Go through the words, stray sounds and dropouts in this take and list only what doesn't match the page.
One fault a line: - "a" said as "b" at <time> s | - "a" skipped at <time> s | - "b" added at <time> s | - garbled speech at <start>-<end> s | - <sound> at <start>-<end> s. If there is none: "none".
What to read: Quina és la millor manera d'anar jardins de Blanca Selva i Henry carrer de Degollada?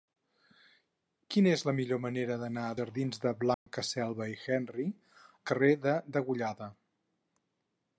- dropout at 3.5-3.7 s